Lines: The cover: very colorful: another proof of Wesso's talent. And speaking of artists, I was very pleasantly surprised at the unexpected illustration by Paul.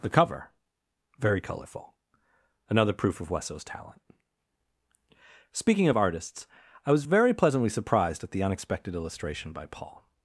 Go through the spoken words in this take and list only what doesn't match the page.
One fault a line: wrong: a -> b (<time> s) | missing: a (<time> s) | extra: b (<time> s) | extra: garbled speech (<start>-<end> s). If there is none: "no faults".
missing: And (4.0 s)